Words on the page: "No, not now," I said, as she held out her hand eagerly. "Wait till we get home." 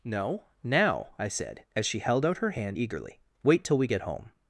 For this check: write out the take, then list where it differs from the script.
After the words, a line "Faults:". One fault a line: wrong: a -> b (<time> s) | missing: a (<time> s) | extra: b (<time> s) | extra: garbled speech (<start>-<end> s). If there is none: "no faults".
"No, now," I said, as she held out her hand eagerly. "Wait till we get home."
Faults:
missing: not (0.4 s)